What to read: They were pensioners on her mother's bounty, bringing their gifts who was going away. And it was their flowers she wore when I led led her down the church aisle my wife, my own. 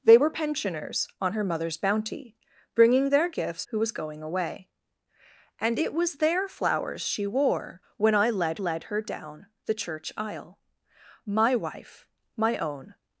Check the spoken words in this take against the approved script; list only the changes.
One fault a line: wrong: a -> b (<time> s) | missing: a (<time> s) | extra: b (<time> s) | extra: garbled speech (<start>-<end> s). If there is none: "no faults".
no faults